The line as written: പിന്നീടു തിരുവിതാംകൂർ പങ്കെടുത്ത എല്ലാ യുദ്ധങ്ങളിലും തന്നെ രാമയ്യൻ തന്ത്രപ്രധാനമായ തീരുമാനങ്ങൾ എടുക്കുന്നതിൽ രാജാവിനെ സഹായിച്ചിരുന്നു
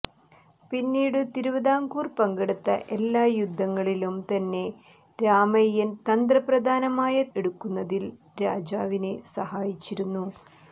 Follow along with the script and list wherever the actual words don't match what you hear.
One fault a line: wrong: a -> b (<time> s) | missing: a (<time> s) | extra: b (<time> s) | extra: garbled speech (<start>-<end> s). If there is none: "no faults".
missing: തീരുമാനങ്ങൾ (7.2 s)